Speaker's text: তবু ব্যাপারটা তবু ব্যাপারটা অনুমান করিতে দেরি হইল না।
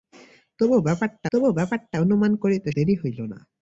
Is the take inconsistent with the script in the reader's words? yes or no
no